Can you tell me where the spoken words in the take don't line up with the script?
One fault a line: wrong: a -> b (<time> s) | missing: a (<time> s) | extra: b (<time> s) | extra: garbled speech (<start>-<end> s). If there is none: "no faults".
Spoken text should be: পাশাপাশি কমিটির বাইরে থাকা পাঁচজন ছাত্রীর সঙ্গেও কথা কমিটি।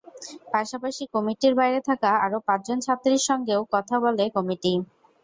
extra: আরও (2.2 s)
extra: বলে (4.0 s)